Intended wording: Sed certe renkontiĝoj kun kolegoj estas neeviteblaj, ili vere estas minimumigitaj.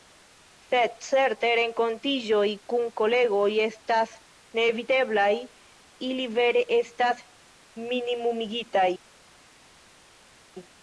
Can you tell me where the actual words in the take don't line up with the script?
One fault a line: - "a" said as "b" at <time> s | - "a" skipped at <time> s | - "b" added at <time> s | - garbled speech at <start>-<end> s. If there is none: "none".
none